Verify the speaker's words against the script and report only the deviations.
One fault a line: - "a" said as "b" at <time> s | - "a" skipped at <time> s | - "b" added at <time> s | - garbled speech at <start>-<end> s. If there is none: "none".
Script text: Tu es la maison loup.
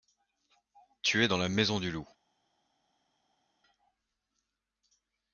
- "dans" added at 1.3 s
- "du" added at 1.8 s